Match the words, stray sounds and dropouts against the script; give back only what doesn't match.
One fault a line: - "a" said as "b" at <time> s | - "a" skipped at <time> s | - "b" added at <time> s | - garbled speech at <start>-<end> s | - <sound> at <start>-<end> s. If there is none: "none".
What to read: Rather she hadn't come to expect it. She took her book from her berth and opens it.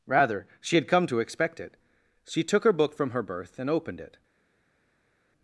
- "hadn't" said as "had" at 0.8 s
- "opens" said as "opened" at 3.7 s